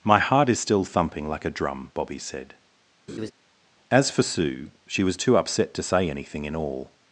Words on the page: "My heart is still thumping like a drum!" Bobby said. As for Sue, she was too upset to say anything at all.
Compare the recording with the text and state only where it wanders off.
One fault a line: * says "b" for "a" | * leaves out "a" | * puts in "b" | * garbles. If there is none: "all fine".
* says "in" for "at"